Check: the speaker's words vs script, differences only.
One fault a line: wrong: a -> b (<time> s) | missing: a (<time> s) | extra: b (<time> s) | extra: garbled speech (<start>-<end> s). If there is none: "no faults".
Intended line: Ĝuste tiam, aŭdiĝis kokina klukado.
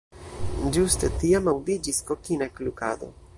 no faults